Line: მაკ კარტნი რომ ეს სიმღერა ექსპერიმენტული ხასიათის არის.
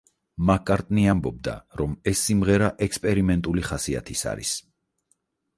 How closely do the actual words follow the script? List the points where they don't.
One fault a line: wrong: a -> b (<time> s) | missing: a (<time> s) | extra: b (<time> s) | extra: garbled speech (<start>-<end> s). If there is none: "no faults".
extra: ამბობდა (1.1 s)